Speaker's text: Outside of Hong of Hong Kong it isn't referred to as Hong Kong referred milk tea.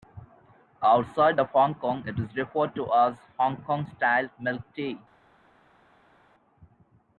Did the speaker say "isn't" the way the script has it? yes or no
no